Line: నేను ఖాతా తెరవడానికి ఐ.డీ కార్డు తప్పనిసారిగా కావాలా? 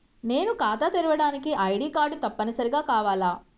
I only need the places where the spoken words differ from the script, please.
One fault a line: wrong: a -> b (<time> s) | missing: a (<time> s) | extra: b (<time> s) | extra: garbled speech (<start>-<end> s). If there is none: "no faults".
no faults